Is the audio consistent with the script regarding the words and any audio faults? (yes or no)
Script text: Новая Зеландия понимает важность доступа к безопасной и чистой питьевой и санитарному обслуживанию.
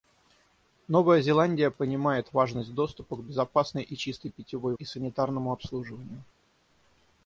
yes